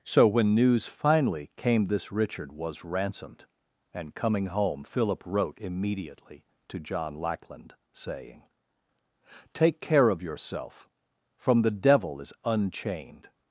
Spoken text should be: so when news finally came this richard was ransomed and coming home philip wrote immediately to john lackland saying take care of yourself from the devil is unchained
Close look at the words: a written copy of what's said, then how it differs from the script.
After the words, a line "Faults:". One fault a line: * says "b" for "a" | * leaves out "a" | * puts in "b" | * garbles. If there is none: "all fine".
so when news finally came this richard was ransomed and coming home philip wrote immediately to john lackland saying take care of yourself from the devil is unchained
Faults:
all fine